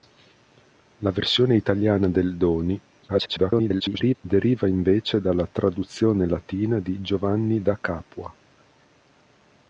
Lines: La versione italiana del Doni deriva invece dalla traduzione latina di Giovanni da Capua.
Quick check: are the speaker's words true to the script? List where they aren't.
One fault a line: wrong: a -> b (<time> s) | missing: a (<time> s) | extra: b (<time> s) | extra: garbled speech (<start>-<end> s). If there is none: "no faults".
extra: garbled speech (3.1-4.2 s)